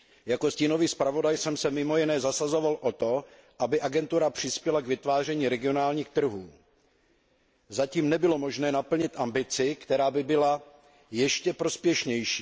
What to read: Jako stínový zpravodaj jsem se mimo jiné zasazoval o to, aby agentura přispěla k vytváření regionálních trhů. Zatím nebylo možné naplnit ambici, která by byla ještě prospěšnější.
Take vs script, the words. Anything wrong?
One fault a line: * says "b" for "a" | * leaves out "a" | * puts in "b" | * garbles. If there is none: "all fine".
all fine